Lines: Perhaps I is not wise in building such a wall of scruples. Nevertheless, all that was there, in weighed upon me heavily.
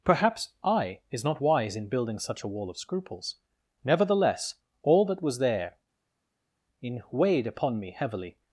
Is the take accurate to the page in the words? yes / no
yes